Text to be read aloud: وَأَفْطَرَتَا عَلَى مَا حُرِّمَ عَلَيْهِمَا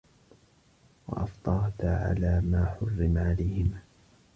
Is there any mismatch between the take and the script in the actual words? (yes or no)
no